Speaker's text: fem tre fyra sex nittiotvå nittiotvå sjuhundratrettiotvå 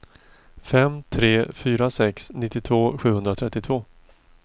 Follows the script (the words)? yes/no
no